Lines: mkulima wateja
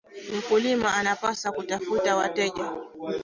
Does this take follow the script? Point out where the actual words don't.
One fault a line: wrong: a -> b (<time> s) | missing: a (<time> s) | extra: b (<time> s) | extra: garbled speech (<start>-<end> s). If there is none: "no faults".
extra: anapaswa kutafuta (0.9 s)